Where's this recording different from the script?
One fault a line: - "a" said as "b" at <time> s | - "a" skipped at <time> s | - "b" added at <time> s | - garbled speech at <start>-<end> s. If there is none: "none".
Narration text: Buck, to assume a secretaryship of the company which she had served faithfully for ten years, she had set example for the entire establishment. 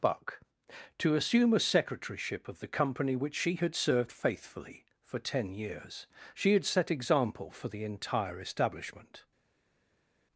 none